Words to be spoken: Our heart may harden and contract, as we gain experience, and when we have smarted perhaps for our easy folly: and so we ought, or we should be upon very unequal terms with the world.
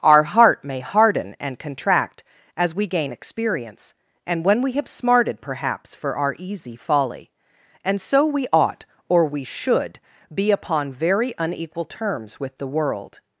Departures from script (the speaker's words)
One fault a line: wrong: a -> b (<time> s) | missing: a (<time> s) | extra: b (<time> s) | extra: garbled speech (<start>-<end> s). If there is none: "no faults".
no faults